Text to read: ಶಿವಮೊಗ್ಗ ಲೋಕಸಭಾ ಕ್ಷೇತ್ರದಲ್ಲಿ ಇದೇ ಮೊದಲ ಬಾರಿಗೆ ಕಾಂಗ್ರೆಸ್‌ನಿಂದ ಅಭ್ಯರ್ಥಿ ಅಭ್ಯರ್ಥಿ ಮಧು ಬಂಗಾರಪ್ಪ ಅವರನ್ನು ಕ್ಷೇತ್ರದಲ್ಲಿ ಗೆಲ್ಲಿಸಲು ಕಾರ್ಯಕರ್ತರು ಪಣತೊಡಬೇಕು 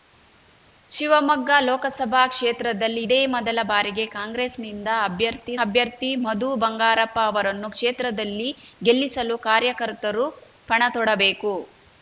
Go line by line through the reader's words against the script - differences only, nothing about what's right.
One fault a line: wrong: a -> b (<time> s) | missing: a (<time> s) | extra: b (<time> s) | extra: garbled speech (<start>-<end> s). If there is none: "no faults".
no faults